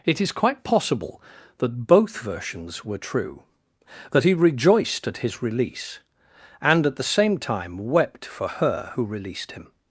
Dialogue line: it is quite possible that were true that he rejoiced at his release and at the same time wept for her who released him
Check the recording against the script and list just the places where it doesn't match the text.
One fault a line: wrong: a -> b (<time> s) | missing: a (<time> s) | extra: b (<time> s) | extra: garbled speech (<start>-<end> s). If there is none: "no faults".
extra: both versions (1.9 s)